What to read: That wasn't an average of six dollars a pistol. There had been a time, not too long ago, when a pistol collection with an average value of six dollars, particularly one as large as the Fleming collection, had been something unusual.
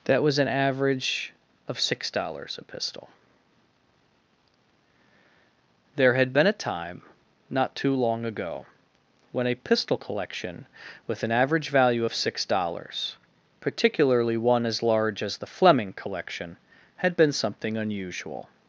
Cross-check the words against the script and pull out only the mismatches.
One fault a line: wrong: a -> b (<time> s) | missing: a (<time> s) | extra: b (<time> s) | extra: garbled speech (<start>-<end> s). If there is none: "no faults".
wrong: wasn't -> was (0.2 s)